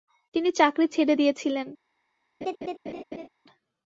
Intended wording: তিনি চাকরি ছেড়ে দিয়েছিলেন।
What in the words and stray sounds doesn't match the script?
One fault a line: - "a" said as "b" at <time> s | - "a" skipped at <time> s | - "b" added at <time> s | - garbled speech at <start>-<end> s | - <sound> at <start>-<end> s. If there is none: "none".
- laugh at 2.4-3.3 s